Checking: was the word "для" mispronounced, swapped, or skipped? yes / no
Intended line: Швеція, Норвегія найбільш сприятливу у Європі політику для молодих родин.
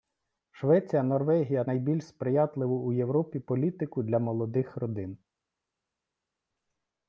no